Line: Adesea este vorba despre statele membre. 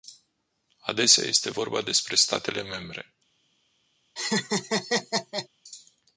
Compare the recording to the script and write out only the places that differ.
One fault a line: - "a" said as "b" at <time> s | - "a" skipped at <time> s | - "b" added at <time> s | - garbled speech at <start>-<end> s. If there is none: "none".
none